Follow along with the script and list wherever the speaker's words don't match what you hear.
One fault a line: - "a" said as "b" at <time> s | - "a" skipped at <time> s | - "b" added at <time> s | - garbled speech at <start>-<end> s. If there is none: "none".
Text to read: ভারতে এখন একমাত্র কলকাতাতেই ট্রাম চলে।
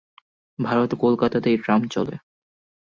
- "এখন একমাত্র" skipped at 0.9 s